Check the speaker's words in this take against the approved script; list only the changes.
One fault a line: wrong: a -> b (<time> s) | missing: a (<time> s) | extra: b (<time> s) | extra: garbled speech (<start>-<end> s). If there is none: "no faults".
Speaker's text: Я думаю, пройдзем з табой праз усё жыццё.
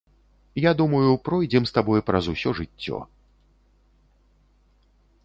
no faults